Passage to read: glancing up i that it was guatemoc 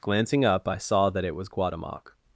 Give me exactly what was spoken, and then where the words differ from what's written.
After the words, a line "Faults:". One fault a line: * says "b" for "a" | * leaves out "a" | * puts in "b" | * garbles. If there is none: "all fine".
glancing up i saw that it was guatemoc
Faults:
* puts in "saw"